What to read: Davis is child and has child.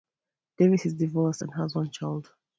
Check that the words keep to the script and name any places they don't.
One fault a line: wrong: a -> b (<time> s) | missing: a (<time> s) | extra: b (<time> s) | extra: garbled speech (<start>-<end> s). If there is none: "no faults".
wrong: child -> divorced (0.9 s)
extra: one (1.7 s)